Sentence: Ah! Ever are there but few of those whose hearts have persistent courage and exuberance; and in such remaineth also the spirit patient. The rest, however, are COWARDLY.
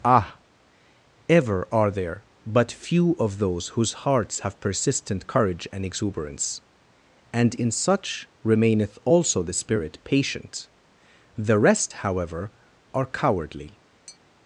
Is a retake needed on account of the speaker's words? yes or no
no